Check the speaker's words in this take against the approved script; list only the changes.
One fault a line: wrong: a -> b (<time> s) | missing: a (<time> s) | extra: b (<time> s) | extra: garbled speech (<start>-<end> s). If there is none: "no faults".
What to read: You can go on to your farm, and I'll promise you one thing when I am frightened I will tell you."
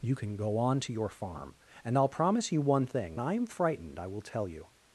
missing: when (3.2 s)